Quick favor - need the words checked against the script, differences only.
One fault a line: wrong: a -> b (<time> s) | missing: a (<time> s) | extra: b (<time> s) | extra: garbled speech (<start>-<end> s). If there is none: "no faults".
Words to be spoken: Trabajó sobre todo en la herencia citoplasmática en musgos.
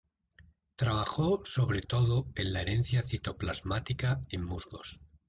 no faults